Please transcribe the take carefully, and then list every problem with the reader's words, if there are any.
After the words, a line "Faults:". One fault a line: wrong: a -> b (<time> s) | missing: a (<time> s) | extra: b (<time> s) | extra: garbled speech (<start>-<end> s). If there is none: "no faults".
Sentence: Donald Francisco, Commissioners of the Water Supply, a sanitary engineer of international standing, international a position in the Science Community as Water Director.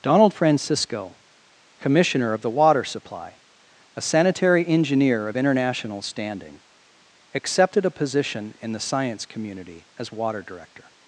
Donald Francisco, Commissioner of the Water Supply, a sanitary engineer of international standing, accepted a position in the Science Community as Water Director.
Faults:
wrong: Commissioners -> Commissioner (1.8 s)
wrong: international -> accepted (7.3 s)